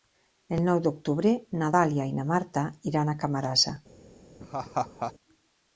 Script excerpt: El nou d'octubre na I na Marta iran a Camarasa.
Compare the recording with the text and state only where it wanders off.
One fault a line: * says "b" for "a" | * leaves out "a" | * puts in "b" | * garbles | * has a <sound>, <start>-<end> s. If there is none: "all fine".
* puts in "Dàlia"
* has a laugh, 4.4-5.1 s